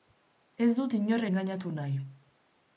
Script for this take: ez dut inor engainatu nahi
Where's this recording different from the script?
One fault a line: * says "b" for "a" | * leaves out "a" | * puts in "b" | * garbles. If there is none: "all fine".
all fine